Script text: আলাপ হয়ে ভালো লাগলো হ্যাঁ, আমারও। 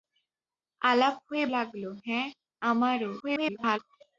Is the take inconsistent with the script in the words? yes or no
yes